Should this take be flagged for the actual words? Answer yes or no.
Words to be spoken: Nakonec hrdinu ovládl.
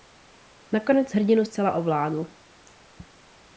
yes